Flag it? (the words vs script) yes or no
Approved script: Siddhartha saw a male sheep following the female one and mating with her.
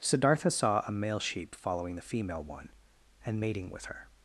no